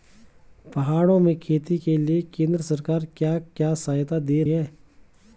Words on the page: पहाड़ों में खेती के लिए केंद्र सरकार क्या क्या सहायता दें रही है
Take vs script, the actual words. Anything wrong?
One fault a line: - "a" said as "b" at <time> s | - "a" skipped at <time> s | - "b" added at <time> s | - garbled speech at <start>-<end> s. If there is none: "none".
- "रही" skipped at 4.4 s